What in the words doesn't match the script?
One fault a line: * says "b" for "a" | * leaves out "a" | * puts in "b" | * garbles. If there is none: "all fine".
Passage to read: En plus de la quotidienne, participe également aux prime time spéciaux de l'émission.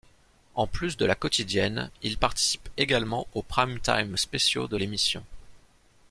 * puts in "il"